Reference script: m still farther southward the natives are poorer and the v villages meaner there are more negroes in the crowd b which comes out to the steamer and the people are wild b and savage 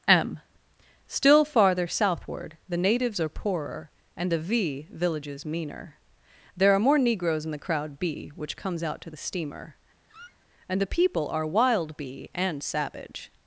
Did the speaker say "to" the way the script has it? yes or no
yes